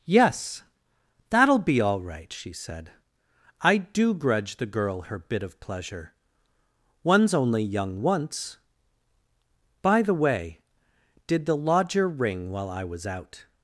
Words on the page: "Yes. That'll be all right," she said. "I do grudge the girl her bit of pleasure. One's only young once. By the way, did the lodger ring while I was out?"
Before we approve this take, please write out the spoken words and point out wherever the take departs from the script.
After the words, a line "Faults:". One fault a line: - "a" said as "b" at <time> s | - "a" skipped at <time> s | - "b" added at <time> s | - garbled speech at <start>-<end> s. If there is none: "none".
"Yes. That'll be all right," she said. "I do grudge the girl her bit of pleasure. One's only young once. By the way, did the lodger ring while I was out?"
Faults:
none